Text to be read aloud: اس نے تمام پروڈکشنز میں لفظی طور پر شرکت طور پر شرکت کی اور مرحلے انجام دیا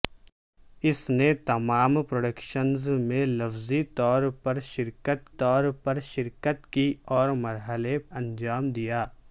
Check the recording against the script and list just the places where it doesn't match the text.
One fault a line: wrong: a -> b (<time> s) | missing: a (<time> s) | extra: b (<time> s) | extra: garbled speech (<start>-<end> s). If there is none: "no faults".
no faults